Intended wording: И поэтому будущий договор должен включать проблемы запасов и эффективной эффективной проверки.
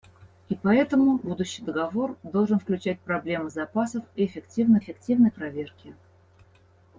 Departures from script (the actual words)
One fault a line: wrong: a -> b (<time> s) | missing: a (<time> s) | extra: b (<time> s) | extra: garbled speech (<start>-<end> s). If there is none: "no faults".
no faults